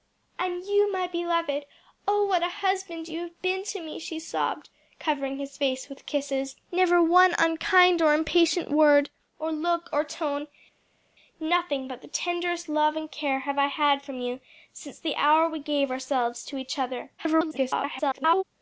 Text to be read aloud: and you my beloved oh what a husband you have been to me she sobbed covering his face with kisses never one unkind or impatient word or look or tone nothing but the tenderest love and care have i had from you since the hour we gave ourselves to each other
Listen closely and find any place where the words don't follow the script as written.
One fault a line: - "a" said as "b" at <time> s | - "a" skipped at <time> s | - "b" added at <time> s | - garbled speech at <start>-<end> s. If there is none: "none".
- garbled speech at 17.2-18.4 s